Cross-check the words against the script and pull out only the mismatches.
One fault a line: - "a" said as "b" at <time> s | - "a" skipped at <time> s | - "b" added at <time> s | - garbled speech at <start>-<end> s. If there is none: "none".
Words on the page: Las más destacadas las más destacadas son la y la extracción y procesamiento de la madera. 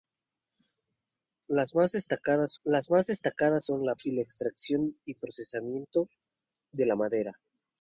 none